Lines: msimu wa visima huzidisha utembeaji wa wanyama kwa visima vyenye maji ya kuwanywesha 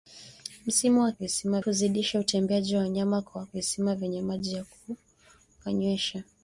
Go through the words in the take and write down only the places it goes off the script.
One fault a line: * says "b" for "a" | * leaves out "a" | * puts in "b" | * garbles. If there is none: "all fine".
all fine